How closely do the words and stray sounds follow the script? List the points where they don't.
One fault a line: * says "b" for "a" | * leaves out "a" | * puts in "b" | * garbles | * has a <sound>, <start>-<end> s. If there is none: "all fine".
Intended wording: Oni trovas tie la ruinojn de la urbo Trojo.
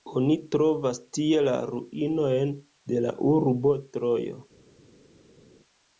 all fine